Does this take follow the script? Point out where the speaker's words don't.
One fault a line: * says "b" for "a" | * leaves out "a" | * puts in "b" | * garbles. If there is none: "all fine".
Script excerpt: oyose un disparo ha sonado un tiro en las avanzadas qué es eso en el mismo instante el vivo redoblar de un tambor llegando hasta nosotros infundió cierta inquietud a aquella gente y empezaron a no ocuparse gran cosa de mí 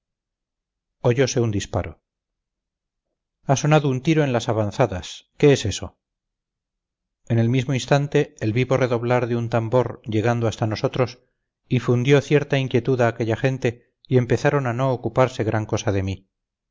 all fine